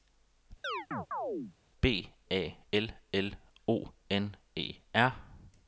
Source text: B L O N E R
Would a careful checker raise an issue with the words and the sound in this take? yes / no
yes